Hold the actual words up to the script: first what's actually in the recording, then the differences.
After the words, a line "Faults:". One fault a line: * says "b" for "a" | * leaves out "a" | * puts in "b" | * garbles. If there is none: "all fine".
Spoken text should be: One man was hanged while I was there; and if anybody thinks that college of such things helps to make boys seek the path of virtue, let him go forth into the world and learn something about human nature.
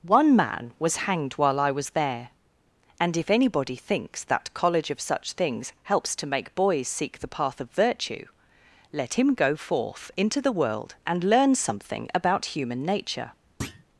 One man was hanged while I was there; and if anybody thinks that college of such things helps to make boys seek the path of virtue, let him go forth into the world and learn something about human nature.
Faults:
all fine